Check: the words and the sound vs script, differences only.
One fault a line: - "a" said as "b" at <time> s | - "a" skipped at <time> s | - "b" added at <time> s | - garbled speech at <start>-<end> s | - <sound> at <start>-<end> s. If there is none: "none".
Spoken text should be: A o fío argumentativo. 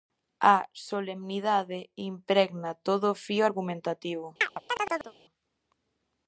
- "solemnidade impregna todo" added at 0.9 s
- chirp at 4.4-5.1 s